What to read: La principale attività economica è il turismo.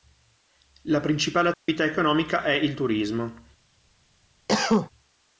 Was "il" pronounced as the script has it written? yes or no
yes